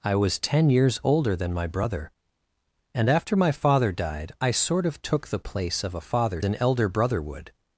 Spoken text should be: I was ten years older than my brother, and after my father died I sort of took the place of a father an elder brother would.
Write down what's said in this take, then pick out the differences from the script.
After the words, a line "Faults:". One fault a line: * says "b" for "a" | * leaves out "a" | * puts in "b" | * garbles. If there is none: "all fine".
I was ten years older than my brother, and after my father died I sort of took the place of a father an elder brother would.
Faults:
all fine